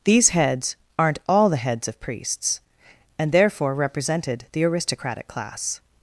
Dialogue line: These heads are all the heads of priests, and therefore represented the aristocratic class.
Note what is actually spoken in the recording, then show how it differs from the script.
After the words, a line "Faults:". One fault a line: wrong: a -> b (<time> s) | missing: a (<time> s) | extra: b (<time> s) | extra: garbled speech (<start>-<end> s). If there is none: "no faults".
These heads aren't all the heads of priests, and therefore represented the aristocratic class.
Faults:
wrong: are -> aren't (1.0 s)